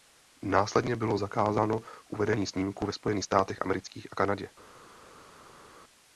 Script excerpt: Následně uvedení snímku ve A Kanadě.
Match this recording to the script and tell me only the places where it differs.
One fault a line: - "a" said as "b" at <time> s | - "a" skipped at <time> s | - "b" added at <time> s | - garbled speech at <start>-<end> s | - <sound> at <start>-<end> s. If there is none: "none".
- "bylo zakázáno" added at 0.9 s
- "Spojených státech amerických" added at 2.9 s